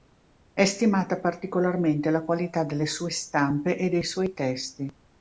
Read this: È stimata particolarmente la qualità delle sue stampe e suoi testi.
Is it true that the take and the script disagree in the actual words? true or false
true